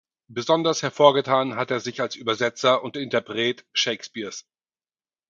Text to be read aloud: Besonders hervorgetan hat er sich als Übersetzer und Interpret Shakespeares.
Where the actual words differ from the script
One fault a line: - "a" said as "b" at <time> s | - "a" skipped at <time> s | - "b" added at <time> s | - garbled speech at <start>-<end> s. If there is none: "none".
none